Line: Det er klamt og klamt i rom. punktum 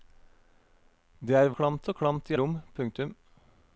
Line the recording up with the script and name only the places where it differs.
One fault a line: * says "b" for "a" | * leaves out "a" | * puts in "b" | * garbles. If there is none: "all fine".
all fine